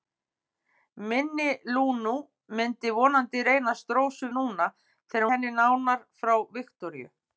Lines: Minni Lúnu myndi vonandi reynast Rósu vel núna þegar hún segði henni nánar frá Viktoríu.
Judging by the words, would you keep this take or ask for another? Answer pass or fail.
fail